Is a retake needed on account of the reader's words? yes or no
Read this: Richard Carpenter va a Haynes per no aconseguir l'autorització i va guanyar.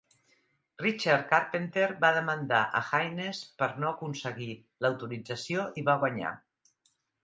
yes